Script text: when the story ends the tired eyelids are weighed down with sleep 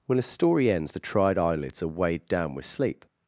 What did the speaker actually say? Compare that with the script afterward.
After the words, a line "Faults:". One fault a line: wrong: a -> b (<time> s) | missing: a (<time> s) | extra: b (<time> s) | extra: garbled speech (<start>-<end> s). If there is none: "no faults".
when a story ends the tried eyelids are weighed down with sleep
Faults:
wrong: the -> a (0.2 s)
wrong: tired -> tried (1.0 s)